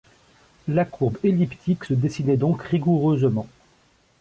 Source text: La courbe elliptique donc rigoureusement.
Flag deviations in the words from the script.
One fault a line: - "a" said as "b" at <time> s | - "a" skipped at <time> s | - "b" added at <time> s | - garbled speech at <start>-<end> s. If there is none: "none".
- "se dessinait" added at 1.8 s